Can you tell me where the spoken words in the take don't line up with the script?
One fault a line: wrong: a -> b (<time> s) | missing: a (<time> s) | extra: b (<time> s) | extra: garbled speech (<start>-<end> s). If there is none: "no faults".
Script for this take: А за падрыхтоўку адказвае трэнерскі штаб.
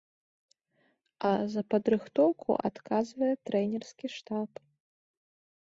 no faults